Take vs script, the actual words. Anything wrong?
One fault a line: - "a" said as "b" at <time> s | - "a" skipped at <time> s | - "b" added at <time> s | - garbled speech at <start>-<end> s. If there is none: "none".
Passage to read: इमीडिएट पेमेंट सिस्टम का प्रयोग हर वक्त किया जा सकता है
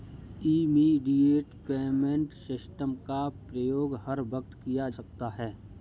- "जा" skipped at 4.9 s